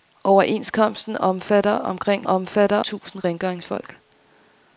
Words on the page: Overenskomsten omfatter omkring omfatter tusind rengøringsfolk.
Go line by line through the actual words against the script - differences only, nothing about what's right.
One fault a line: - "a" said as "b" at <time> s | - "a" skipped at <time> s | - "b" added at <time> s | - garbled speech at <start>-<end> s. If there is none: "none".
none